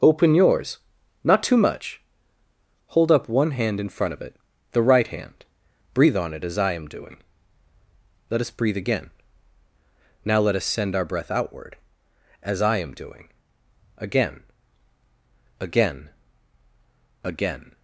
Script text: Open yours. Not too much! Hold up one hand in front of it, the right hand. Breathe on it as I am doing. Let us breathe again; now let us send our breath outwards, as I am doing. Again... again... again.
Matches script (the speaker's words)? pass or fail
fail